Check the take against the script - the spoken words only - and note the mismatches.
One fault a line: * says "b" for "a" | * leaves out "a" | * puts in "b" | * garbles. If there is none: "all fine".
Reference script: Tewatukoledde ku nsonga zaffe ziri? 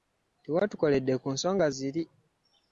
* leaves out "zaffe"